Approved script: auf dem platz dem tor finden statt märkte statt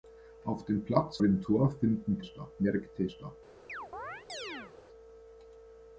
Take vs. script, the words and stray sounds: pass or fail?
fail